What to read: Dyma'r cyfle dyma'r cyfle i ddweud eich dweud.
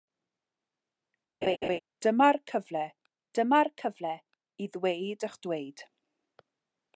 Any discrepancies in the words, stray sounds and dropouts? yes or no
yes